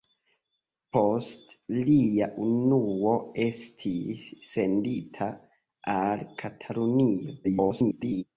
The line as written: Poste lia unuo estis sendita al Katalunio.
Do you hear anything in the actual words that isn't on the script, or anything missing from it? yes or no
yes